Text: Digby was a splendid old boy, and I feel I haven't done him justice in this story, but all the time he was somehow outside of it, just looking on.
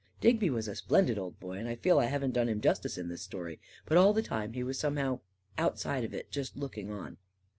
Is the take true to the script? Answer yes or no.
yes